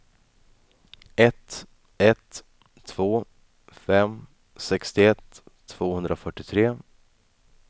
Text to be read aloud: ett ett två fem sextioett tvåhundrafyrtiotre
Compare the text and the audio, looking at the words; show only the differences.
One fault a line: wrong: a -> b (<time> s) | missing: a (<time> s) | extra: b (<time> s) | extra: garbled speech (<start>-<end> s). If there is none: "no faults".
no faults